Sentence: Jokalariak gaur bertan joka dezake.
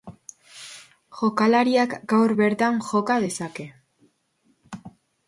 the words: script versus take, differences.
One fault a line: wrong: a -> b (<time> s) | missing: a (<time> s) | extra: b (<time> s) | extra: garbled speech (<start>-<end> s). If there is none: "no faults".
no faults